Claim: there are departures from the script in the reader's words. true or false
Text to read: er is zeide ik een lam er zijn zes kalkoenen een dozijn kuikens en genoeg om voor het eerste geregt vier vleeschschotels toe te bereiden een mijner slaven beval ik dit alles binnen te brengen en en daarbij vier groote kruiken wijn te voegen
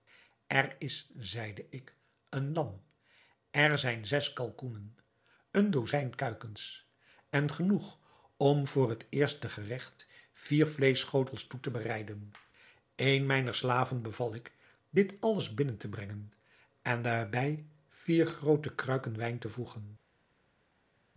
true